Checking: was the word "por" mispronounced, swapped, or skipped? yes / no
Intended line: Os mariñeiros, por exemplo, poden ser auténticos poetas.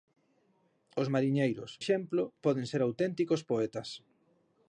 yes